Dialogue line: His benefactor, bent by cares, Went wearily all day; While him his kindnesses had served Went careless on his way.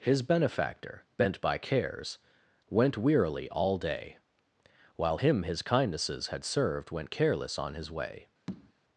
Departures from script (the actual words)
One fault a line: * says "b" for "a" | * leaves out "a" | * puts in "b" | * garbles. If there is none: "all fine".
all fine